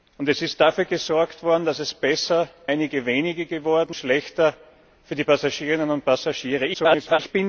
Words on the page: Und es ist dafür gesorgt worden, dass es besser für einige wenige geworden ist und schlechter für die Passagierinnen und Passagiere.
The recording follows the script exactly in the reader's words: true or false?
false